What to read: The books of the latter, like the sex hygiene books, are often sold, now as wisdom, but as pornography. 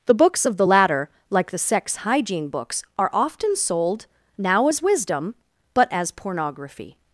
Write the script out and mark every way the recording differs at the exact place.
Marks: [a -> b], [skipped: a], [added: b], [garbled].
The books of the latter, like the sex hygiene books, are often sold, now as wisdom, but as pornography.